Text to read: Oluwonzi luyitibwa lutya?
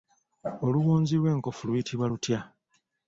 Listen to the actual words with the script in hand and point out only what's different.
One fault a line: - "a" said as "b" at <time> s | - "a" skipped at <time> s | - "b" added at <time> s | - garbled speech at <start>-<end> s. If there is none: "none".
- "lw'enkofu" added at 1.2 s